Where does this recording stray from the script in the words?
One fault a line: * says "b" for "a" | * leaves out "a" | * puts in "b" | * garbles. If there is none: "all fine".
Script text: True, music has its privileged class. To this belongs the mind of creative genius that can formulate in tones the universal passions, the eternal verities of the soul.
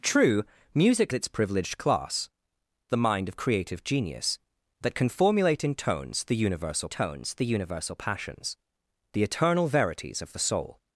* leaves out "has"
* leaves out "To this belongs"
* puts in "tones the universal"